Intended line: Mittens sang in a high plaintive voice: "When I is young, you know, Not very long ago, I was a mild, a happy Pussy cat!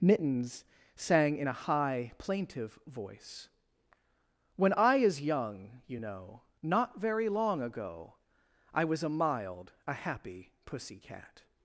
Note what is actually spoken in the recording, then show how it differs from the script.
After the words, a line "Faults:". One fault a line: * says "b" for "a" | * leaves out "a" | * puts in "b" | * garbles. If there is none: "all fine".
Mittens sang in a high plaintive voice: "When I is young, you know, Not very long ago, I was a mild, a happy Pussy cat!
Faults:
all fine